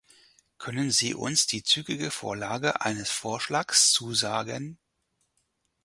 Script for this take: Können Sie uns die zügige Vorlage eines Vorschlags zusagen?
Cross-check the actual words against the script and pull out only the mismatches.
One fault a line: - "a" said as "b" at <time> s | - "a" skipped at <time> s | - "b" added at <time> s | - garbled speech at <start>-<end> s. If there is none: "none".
none